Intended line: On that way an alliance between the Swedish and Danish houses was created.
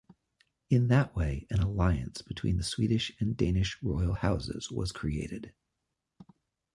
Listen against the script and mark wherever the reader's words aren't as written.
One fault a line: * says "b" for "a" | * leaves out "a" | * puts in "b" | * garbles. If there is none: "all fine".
* says "In" for "On"
* puts in "royal"